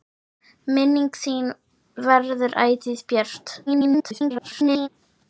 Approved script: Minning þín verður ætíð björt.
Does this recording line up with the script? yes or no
no